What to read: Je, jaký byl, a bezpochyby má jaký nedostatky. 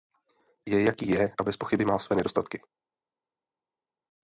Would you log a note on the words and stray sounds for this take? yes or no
yes